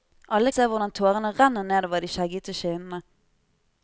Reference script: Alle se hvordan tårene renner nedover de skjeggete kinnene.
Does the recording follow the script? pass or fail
pass